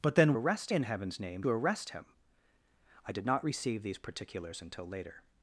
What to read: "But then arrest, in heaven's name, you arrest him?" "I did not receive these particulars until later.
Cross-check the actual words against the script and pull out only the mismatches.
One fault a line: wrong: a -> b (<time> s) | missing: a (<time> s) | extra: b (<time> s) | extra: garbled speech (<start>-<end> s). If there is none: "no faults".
no faults